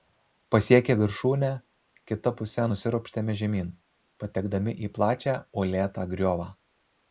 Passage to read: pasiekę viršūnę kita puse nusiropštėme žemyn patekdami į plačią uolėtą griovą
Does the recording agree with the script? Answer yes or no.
yes